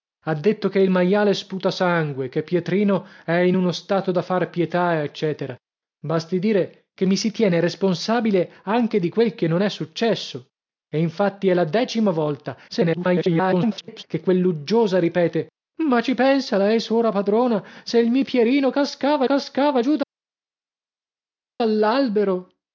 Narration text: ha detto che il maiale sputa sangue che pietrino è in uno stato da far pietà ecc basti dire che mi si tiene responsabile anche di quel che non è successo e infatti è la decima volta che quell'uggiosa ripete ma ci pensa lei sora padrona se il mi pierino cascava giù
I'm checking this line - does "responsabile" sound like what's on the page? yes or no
yes